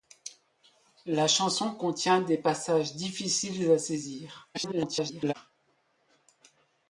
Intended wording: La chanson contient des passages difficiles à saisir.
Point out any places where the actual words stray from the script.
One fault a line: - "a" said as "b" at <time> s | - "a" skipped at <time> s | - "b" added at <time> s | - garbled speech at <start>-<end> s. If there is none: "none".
- garbled speech at 4.5-5.3 s